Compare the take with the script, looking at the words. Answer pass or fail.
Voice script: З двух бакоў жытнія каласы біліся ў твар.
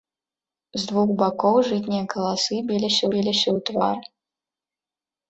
fail